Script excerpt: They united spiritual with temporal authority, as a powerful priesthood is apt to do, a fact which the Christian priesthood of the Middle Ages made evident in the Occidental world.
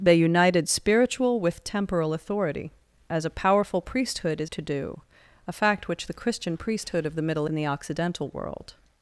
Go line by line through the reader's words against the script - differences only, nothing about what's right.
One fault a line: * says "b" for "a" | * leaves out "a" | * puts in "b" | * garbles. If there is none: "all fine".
* leaves out "apt"
* leaves out "Ages made evident"